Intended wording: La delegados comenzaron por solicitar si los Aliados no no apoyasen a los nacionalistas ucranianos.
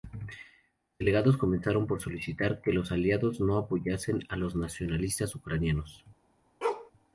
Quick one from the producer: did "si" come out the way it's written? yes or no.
no